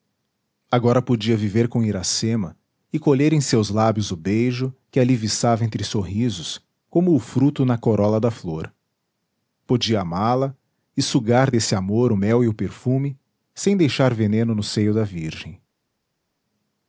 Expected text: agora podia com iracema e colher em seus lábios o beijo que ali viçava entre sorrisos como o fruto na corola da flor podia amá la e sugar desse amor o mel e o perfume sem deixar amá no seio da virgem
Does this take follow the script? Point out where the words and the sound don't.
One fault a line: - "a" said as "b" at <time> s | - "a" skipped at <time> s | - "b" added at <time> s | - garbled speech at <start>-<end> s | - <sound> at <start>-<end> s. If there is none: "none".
- "viver" added at 1.4 s
- "amá" said as "veneno" at 14.1 s